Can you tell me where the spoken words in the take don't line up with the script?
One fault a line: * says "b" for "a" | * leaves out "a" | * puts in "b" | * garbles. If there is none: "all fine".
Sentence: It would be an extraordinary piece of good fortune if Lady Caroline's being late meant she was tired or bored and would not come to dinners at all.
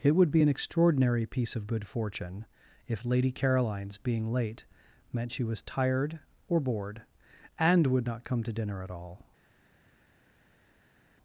* says "dinner" for "dinners"